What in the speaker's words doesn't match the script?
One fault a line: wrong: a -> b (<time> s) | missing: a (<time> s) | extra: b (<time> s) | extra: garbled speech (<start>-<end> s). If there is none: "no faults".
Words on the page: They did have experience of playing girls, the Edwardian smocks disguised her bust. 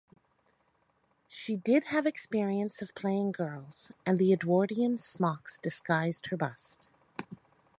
wrong: They -> She (1.3 s)
extra: and (4.0 s)